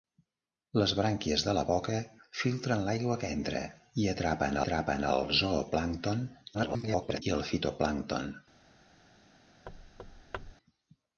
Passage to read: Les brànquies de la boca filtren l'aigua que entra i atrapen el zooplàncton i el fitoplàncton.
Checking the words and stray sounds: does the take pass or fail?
fail